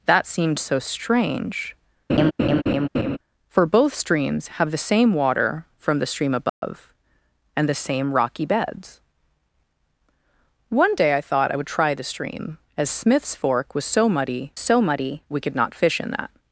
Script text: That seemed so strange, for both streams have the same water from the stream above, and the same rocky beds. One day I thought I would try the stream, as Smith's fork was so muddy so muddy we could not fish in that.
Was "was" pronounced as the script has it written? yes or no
yes